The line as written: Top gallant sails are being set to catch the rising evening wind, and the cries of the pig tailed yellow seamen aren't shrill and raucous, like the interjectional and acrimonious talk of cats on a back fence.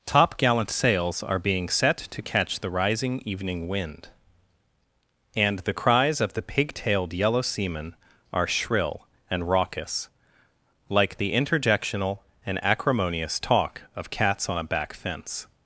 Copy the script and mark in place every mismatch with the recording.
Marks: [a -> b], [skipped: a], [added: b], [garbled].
Top gallant sails are being set to catch the rising evening wind, and the cries of the pig tailed yellow seamen [aren't -> are] shrill and raucous, like the interjectional and acrimonious talk of cats on a back fence.